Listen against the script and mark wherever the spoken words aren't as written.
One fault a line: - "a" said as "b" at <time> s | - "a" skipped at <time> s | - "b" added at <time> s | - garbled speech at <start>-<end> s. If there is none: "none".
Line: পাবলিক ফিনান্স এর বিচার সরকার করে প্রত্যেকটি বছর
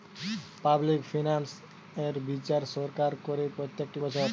none